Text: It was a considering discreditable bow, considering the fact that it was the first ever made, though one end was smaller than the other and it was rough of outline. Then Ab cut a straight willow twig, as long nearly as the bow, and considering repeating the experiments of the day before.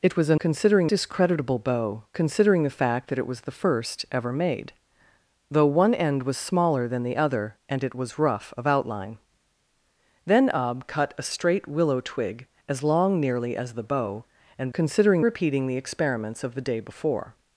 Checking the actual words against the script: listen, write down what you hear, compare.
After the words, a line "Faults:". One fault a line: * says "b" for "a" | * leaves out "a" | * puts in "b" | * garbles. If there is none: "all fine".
It was a considering discreditable bow, considering the fact that it was the first ever made, though one end was smaller than the other and it was rough of outline. Then Ab cut a straight willow twig, as long nearly as the bow, and considering repeating the experiments of the day before.
Faults:
all fine